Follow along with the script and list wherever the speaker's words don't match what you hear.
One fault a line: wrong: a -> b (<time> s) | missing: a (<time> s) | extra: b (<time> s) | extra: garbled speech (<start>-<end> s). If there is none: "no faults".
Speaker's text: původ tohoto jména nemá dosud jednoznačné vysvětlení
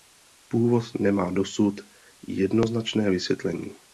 missing: tohoto jména (0.9 s)